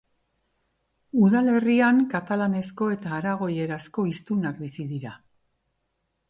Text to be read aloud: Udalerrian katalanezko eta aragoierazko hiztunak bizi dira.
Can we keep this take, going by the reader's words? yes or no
yes